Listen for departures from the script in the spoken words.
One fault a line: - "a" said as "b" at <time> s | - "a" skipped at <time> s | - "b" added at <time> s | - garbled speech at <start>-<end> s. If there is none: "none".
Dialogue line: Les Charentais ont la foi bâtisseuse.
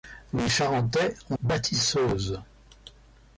- "la foi" skipped at 1.4 s